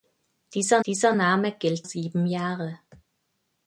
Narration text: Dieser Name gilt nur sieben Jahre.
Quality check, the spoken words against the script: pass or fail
fail